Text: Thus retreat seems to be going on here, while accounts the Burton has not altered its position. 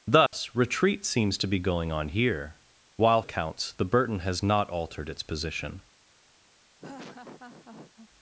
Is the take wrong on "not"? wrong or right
right